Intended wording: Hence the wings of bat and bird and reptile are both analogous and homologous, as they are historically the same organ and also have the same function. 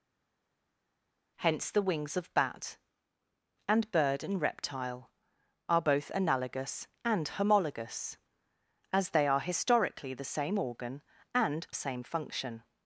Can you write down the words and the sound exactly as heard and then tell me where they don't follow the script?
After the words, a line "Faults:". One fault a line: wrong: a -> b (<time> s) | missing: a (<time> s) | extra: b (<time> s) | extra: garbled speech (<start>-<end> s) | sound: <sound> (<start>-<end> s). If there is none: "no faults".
Hence the wings of bat and bird and reptile are both analogous and homologous, as they are historically the same organ and same function.
Faults:
missing: also have the (11.7 s)